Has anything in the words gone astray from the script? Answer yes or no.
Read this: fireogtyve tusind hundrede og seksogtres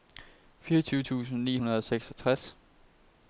yes